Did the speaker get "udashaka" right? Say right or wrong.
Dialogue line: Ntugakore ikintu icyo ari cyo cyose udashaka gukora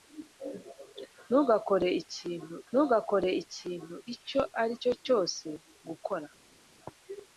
wrong